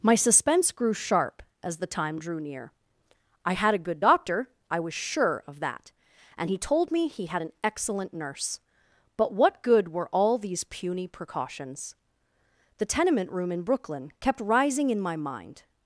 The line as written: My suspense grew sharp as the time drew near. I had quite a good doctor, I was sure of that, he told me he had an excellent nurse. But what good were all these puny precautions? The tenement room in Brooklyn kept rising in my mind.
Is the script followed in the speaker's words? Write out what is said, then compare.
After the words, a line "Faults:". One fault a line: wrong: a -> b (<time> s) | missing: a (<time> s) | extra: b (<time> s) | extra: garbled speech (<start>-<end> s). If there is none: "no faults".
My suspense grew sharp as the time drew near. I had a good doctor, I was sure of that, and he told me he had an excellent nurse. But what good were all these puny precautions? The tenement room in Brooklyn kept rising in my mind.
Faults:
missing: quite (3.8 s)
extra: and (6.4 s)